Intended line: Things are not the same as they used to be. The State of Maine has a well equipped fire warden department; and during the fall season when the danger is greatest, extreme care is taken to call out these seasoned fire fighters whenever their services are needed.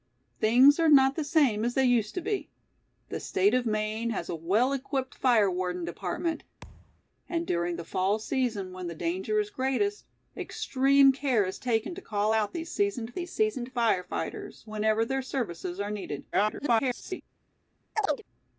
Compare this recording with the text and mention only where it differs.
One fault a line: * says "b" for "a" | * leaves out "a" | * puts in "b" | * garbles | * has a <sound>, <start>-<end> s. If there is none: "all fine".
* has a thud, 6.6-7.0 s
* puts in "these seasoned"
* garbles
* has a chirp, 17.9-18.2 s